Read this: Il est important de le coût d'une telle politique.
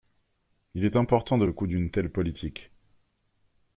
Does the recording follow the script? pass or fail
pass